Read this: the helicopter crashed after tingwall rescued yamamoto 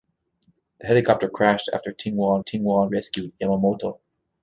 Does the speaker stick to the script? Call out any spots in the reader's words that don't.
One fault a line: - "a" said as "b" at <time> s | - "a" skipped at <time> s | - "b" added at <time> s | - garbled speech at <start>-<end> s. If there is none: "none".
- "tingwall" added at 2.4 s